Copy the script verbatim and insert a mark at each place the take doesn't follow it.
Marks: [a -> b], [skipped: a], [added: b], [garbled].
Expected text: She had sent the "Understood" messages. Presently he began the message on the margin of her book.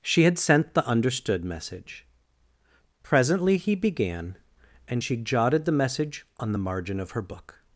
She had sent the "Understood" [messages. -> message] Presently he began [added: and she jotted] the message on the margin of her book.